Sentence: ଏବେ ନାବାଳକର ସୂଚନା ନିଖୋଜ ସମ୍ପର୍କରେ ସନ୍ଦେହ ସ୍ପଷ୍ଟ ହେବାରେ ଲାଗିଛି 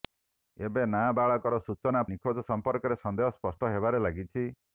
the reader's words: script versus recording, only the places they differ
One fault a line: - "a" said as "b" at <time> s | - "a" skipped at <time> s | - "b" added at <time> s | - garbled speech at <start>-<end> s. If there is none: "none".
none